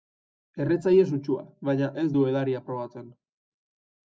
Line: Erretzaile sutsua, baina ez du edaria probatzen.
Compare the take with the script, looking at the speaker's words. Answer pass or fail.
pass